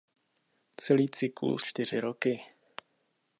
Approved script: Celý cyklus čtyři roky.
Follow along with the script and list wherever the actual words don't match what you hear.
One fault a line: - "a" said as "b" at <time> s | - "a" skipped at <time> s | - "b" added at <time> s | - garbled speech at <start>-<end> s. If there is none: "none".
none